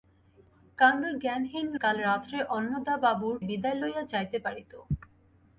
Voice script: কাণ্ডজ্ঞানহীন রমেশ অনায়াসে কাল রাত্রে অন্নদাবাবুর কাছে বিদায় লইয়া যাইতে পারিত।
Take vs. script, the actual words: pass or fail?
fail